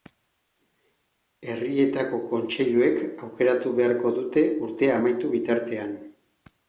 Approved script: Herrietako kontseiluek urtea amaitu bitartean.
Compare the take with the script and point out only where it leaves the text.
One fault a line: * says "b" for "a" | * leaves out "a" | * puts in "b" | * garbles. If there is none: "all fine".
* puts in "aukeratu beharko dute"